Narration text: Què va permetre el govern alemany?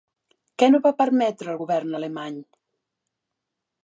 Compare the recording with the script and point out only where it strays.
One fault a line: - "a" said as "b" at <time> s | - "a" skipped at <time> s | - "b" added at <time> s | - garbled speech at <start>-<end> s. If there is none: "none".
- "no" added at 0.7 s